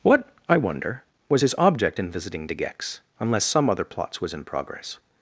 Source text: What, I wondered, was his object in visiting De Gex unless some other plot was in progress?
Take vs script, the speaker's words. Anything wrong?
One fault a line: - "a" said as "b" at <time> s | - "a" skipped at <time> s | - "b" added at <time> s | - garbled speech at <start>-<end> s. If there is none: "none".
- "wondered" said as "wonder" at 0.6 s
- "plot" said as "plots" at 3.8 s